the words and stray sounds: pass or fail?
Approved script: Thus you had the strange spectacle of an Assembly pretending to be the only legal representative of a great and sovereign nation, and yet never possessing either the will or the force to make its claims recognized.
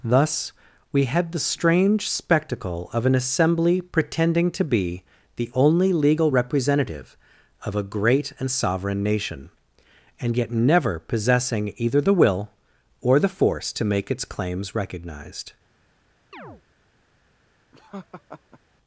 fail